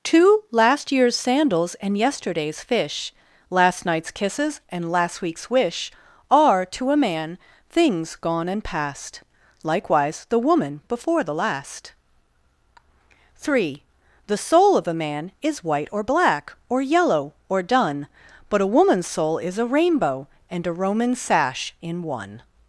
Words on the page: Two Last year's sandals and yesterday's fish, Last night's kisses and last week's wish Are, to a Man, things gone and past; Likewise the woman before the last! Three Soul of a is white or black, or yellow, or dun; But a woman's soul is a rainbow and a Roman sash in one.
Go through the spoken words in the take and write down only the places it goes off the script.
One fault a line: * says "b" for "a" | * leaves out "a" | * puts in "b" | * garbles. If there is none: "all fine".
* puts in "The"
* puts in "man"